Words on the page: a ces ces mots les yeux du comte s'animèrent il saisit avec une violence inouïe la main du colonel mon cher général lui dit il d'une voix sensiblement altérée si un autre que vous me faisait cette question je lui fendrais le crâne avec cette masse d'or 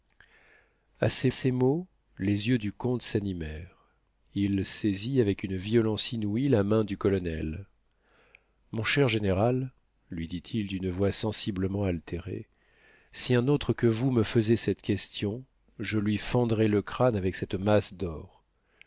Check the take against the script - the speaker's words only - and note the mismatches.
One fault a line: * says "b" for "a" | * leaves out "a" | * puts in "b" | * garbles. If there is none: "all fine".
all fine